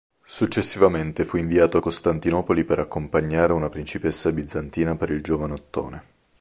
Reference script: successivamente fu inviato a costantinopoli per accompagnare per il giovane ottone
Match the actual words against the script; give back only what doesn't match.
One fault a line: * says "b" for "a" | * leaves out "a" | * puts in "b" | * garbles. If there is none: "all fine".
* puts in "una principessa bizantina"